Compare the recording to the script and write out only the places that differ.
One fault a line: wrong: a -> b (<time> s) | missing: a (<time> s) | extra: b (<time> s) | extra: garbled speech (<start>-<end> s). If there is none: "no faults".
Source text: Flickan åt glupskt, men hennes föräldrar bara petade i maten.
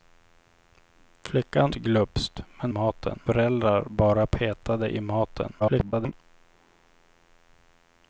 missing: åt (1.8 s)
wrong: hennes -> maten (2.7 s)
extra: garbled speech (5.6-6.1 s)